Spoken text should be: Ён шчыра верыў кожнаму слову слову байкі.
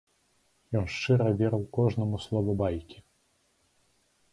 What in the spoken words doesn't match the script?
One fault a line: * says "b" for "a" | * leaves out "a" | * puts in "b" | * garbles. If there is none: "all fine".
* leaves out "слову"